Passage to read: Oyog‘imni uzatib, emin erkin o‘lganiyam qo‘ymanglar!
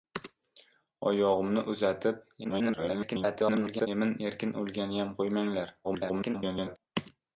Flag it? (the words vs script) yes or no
yes